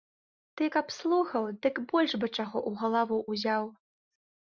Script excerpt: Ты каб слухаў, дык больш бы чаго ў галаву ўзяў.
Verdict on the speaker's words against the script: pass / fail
pass